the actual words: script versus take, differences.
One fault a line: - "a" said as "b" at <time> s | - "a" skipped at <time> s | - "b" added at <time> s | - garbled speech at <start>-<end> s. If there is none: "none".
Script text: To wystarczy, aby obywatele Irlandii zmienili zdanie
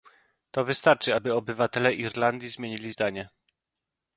none